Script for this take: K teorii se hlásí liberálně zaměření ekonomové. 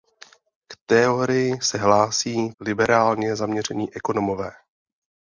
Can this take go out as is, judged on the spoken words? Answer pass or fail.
pass